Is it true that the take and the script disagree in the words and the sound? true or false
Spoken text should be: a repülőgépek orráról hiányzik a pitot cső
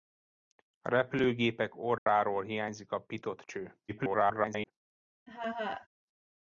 true